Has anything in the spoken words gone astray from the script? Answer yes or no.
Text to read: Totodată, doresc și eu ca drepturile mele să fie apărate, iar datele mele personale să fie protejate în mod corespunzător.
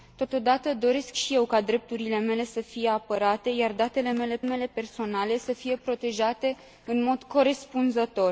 yes